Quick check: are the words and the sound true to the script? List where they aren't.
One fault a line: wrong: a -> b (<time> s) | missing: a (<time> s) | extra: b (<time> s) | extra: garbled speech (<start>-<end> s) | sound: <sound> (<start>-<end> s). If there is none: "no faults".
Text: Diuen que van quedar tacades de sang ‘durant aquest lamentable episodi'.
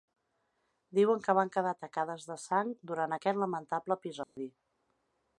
sound: dropout (4.2-4.4 s)